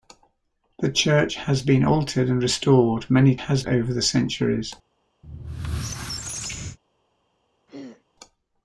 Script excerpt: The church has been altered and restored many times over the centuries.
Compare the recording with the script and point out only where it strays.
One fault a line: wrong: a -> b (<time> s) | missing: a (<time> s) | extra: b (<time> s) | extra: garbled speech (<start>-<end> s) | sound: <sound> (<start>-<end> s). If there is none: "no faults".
wrong: times -> has (3.4 s)
sound: squeak (5.2-6.8 s)
sound: throat clearing (7.7-8.0 s)